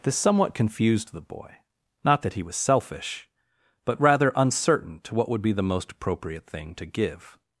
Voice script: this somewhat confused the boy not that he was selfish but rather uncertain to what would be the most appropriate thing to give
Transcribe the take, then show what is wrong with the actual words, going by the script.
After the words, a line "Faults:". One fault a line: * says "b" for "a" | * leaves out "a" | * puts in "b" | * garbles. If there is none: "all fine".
this somewhat confused the boy not that he was selfish but rather uncertain to what would be the most appropriate thing to give
Faults:
all fine